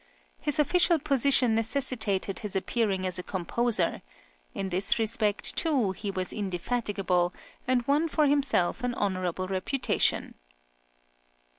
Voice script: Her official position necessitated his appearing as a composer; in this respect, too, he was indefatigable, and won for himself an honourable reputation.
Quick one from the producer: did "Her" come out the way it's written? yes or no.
no